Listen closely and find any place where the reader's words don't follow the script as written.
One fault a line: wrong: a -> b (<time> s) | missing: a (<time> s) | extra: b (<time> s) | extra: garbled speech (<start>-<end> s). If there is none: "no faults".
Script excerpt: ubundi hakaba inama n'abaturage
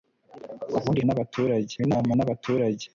wrong: hakaba -> n'abaturage (1.0 s)